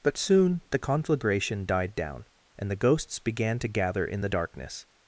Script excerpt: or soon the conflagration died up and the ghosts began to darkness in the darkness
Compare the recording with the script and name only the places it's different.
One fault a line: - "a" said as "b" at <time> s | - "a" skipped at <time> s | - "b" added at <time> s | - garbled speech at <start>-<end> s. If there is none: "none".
- "or" said as "but" at 0.0 s
- "up" said as "down" at 1.9 s
- "darkness" said as "gather" at 3.7 s